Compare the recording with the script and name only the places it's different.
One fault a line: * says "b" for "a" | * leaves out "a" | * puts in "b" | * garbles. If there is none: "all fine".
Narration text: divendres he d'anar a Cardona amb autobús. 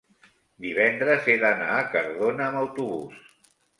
all fine